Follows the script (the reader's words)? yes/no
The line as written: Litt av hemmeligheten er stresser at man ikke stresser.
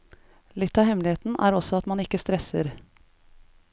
no